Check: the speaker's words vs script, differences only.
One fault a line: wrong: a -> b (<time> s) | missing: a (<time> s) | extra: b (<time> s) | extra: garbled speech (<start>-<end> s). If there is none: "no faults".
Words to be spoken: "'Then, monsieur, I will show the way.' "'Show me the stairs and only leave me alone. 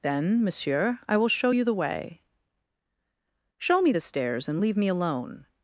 extra: you (1.5 s)
missing: only (4.6 s)